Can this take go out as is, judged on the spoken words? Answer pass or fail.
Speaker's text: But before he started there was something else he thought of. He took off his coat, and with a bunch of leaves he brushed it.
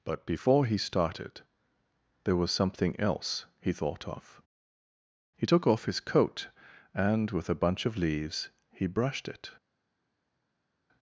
pass